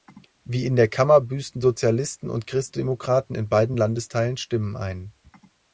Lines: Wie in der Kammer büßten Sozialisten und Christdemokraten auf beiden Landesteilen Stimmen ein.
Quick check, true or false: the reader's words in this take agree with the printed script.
false